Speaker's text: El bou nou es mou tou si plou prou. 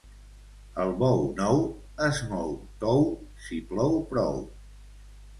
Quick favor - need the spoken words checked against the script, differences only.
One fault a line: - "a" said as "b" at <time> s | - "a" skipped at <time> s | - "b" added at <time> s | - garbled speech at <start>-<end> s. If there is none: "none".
none